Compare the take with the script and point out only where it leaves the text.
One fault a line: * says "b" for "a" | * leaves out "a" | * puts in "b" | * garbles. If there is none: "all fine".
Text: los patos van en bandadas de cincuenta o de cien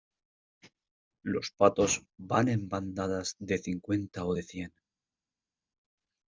all fine